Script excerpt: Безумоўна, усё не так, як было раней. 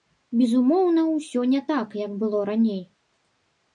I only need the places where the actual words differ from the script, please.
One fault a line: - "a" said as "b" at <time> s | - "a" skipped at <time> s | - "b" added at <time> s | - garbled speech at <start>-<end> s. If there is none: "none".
none